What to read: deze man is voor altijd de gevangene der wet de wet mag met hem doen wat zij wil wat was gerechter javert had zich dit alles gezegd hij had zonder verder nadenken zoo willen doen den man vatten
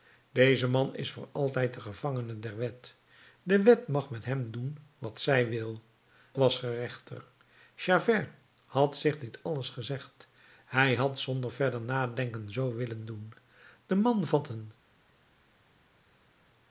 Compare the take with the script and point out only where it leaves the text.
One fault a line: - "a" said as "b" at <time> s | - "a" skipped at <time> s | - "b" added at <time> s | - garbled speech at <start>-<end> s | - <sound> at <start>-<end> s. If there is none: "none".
- "wat" skipped at 5.8 s